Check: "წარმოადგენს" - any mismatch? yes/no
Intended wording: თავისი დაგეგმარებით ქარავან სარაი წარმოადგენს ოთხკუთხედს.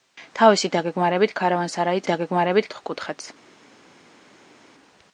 yes